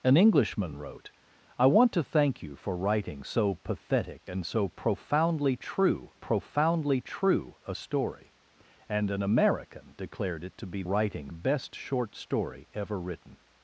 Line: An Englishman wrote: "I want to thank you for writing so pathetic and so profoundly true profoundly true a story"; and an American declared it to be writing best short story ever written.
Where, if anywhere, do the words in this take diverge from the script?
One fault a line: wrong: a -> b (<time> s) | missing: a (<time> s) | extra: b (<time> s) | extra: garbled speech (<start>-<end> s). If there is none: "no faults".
no faults